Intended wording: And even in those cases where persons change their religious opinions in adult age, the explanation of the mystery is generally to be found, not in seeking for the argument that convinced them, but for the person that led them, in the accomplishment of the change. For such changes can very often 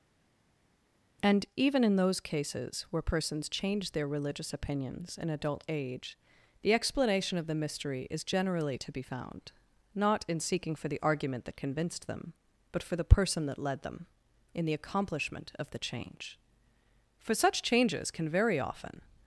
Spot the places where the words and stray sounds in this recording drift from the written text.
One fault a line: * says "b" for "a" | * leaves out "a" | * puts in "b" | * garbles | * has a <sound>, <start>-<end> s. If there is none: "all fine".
all fine